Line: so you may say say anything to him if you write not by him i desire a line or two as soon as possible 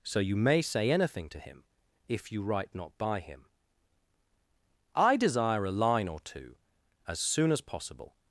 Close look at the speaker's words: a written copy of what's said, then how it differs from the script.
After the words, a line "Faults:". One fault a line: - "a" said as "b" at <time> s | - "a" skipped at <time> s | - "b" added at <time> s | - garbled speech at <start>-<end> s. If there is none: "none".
so you may say anything to him if you write not by him i desire a line or two as soon as possible
Faults:
- "say" skipped at 0.9 s